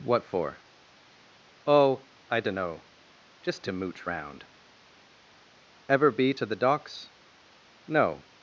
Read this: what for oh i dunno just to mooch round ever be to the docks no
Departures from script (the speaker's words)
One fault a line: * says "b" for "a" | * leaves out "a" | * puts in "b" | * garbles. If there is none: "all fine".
all fine